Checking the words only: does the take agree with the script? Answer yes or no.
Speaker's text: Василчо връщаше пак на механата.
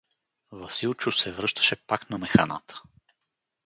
no